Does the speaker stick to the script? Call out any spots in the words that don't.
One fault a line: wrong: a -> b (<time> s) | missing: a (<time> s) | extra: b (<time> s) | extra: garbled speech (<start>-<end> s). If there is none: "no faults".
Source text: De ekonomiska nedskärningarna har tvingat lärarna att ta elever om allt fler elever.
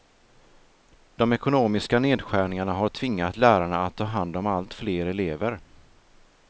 wrong: elever -> hand (4.0 s)